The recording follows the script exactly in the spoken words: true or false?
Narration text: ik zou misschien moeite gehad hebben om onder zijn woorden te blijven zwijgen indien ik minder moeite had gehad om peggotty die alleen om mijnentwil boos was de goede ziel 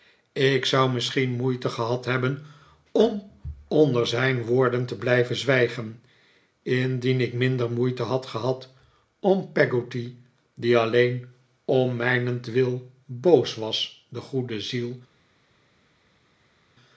true